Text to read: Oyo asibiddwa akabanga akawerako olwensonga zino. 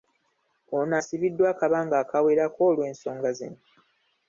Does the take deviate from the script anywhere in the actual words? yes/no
yes